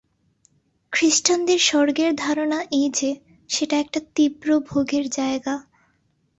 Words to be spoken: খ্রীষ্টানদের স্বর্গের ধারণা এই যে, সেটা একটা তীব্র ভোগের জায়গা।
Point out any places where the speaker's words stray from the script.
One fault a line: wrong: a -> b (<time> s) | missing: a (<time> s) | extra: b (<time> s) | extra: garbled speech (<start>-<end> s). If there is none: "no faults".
no faults